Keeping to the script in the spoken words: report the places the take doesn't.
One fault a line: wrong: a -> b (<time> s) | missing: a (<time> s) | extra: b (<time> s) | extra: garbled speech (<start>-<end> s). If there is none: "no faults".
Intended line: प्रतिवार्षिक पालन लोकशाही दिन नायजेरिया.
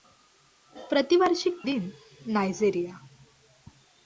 missing: पालन लोकशाही (1.6 s)